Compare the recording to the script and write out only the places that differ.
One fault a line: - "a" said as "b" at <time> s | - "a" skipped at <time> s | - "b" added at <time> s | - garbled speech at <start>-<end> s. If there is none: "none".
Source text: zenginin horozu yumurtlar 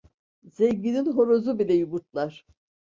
- "bile" added at 1.6 s